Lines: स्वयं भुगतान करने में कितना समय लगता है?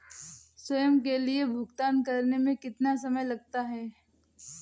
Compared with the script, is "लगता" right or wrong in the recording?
right